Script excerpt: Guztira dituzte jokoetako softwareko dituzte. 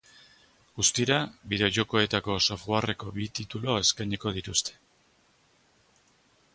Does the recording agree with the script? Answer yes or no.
no